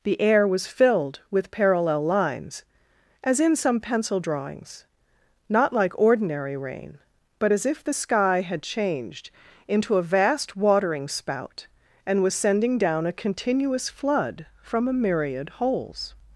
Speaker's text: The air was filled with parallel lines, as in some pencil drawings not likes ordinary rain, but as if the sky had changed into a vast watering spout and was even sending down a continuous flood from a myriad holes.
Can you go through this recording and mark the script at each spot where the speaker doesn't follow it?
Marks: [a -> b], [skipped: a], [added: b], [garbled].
The air was filled with parallel lines, as in some pencil drawings not [likes -> like] ordinary rain, but as if the sky had changed into a vast watering spout and was [skipped: even] sending down a continuous flood from a myriad holes.